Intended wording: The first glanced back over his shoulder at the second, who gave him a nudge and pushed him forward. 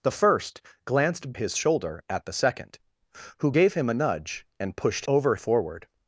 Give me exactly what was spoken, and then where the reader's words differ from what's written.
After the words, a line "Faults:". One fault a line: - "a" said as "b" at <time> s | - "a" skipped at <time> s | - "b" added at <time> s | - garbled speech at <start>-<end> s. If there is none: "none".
The first glanced his shoulder at the second, who gave him a nudge and pushed over forward.
Faults:
- "back over" skipped at 1.3 s
- "him" said as "over" at 5.1 s